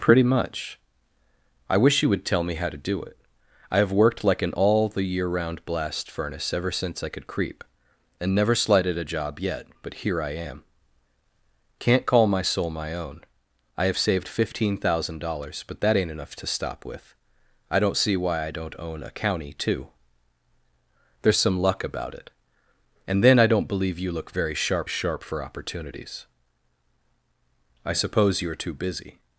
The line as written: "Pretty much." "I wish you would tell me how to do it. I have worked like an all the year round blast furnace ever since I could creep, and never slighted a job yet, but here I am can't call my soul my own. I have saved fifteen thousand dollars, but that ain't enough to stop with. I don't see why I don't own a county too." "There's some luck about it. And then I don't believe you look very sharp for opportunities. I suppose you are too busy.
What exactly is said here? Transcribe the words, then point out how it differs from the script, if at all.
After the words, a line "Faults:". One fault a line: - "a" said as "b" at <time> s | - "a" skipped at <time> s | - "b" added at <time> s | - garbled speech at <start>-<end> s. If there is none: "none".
"Pretty much." "I wish you would tell me how to do it. I have worked like an all the year round blast furnace ever since I could creep, and never slighted a job yet, but here I am can't call my soul my own. I have saved fifteen thousand dollars, but that ain't enough to stop with. I don't see why I don't own a county too." "There's some luck about it. And then I don't believe you look very sharp sharp for opportunities. I suppose you are too busy.
Faults:
- "sharp" added at 24.9 s